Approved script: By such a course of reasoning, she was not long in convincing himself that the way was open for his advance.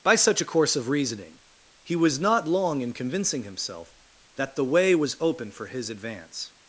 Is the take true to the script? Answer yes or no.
no